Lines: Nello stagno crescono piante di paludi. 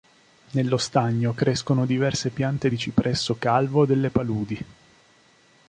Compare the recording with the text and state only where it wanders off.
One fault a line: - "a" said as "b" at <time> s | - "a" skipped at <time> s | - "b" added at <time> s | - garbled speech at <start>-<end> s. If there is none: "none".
- "diverse" added at 1.9 s
- "cipresso calvo delle" added at 2.8 s